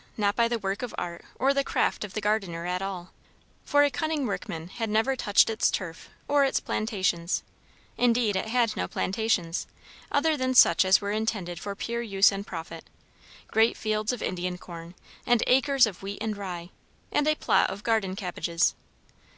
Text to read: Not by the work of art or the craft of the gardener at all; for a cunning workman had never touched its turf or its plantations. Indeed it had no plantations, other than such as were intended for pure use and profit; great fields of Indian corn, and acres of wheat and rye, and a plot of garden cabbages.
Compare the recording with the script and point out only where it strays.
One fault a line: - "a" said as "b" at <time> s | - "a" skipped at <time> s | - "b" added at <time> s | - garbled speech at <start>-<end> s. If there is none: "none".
none